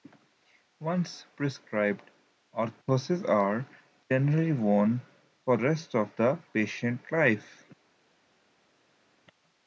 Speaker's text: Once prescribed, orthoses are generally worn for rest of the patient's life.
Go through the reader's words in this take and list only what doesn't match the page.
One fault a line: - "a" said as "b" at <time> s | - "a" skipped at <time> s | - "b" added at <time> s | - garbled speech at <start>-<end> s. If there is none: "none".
none